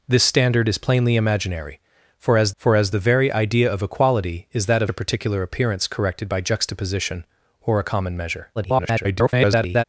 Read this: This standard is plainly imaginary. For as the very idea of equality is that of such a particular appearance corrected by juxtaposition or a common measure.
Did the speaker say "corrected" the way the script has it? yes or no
yes